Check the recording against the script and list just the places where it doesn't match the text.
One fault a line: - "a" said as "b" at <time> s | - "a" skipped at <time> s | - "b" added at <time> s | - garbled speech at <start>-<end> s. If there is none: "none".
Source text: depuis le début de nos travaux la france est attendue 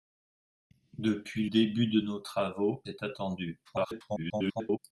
- "le" skipped at 1.5 s
- "la france" skipped at 2.8 s
- garbled speech at 3.6-4.8 s